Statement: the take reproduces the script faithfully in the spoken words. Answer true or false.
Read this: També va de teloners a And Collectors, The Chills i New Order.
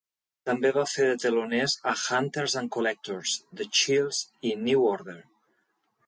false